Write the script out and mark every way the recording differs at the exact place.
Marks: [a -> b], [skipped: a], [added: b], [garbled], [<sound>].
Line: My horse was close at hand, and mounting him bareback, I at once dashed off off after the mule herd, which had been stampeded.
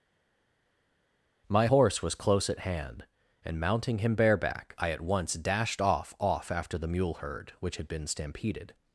My horse was close at hand, and mounting him bareback, I at once dashed off off after the mule herd, which had been stampeded.